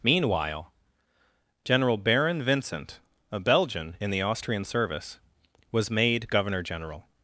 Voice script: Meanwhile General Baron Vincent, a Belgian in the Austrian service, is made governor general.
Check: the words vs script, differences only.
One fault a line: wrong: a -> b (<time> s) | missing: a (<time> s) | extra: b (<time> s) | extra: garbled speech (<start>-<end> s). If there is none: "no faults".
wrong: is -> was (5.7 s)